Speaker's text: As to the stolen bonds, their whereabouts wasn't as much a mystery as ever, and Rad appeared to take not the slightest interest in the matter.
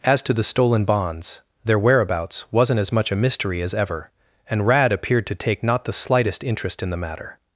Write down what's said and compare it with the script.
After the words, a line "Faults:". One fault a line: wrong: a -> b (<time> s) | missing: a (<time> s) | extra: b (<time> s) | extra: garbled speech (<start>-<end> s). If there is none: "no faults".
As to the stolen bonds, their whereabouts wasn't as much a mystery as ever, and Rad appeared to take not the slightest interest in the matter.
Faults:
no faults